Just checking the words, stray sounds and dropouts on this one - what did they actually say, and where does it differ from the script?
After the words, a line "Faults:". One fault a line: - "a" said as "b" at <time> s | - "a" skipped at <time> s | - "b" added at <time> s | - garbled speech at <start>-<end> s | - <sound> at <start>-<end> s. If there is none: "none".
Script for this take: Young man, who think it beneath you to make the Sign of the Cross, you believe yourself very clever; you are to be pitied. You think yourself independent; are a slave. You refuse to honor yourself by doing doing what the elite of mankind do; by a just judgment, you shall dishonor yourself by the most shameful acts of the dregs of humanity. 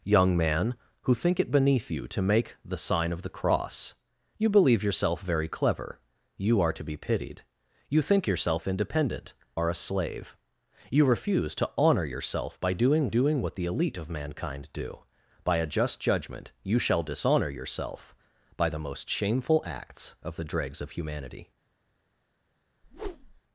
Young man, who think it beneath you to make the Sign of the Cross, you believe yourself very clever; you are to be pitied. You think yourself independent; are a slave. You refuse to honor yourself by doing doing what the elite of mankind do; by a just judgment, you shall dishonor yourself by the most shameful acts of the dregs of humanity.
Faults:
- whoosh at 22.8-23.4 s